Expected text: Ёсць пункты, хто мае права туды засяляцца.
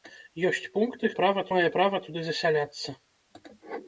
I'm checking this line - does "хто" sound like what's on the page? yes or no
no